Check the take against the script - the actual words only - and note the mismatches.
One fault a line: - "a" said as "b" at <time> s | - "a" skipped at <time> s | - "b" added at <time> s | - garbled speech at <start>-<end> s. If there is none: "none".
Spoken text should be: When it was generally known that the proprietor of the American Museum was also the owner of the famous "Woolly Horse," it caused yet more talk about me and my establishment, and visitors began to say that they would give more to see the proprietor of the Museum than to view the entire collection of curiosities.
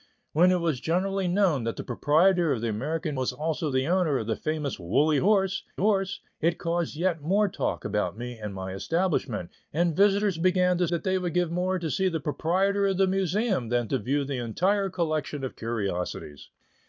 - "Museum" skipped at 3.2 s
- "Horse" added at 5.7 s
- "say" skipped at 10.9 s